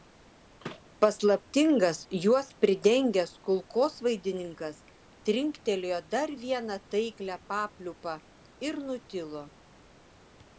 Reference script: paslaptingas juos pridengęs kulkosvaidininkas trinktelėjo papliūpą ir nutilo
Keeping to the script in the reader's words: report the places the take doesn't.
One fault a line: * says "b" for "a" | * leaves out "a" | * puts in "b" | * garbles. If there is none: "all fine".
* puts in "dar vieną taiklią"